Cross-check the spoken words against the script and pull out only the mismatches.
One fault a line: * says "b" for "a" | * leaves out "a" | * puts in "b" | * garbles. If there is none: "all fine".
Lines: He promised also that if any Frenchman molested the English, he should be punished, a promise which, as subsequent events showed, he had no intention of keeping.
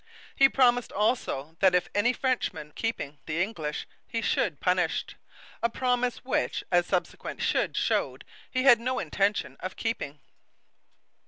* says "keeping" for "molested"
* leaves out "be"
* says "should" for "events"